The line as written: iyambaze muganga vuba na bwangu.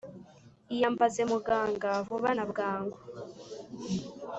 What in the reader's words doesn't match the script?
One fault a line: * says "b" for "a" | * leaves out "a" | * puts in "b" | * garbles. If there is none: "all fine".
all fine